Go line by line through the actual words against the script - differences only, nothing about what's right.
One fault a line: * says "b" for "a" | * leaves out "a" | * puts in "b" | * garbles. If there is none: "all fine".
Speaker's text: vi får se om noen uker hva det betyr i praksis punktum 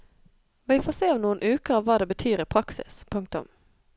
all fine